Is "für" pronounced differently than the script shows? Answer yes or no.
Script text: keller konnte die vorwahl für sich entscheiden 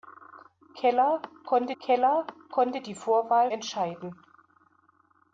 yes